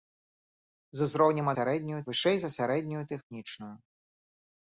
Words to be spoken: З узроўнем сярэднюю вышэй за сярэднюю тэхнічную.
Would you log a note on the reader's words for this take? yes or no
no